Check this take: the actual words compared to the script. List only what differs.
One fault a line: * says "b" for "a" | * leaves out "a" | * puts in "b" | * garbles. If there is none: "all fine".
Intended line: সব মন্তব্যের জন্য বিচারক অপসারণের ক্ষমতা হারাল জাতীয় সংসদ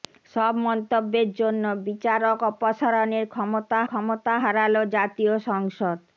* puts in "ক্ষমতা"